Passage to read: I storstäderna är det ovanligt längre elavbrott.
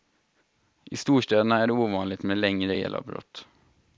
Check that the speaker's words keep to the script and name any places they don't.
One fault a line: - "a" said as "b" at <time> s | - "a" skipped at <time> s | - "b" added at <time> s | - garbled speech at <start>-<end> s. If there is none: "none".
- "med" added at 2.2 s